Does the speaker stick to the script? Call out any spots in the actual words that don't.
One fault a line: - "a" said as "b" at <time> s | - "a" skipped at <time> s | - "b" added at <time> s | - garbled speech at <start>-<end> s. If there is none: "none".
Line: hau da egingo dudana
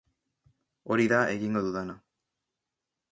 - "hau" said as "hori" at 0.9 s